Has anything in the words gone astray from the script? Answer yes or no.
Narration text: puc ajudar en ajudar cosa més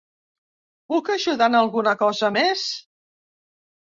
yes